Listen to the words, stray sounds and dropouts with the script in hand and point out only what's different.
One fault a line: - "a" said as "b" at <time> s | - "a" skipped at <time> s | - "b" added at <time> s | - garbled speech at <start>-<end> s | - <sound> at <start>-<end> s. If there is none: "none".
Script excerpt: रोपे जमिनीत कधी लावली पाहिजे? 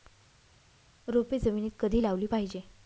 none